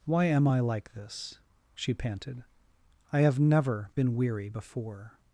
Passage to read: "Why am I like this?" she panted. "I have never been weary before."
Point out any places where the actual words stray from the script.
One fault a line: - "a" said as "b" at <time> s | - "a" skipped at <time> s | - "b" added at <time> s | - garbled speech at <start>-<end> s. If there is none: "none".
none